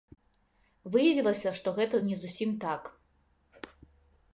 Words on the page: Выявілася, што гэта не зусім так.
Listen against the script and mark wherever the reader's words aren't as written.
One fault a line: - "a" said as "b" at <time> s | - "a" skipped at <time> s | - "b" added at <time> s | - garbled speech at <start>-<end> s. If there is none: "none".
none